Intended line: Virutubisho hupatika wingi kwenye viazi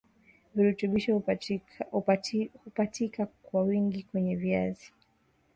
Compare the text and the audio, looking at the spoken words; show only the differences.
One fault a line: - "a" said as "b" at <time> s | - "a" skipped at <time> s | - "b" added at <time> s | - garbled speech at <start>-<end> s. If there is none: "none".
- "kwa" added at 3.4 s